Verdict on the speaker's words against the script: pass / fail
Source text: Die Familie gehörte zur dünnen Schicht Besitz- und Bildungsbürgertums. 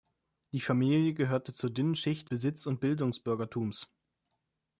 pass